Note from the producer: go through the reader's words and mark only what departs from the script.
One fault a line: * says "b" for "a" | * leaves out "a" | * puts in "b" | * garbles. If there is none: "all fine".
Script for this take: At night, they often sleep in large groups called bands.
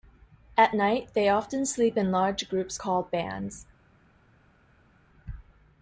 all fine